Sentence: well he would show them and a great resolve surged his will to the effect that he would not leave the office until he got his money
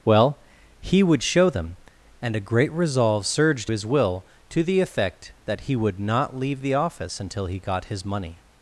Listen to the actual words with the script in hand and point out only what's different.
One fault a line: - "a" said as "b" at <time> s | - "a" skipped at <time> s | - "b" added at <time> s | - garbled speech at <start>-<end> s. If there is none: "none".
none